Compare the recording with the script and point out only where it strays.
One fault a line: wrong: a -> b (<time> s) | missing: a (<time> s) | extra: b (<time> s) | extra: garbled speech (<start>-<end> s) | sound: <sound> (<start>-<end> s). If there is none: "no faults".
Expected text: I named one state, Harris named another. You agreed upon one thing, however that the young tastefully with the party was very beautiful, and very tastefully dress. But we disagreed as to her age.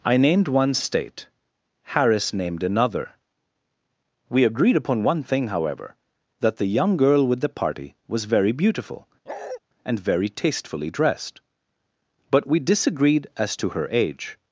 wrong: You -> We (4.3 s)
wrong: tastefully -> girl (7.0 s)
sound: bark (9.3-9.6 s)
wrong: dress -> dressed (10.9 s)